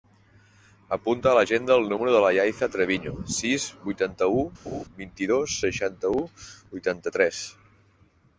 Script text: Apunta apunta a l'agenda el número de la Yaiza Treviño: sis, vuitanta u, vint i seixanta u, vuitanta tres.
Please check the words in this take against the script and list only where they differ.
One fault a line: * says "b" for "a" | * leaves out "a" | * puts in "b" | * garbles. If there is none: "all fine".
* leaves out "apunta"
* puts in "dos"